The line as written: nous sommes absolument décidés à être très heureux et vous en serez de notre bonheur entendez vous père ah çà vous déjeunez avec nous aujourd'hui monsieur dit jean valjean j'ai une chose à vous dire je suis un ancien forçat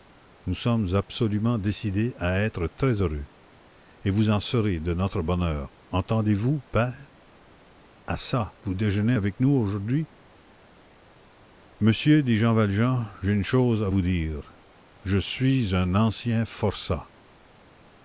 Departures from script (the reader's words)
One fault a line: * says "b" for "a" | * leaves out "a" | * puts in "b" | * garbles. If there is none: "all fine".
all fine